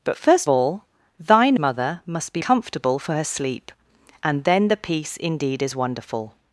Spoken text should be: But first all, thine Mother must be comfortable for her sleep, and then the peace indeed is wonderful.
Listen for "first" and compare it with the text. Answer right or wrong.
right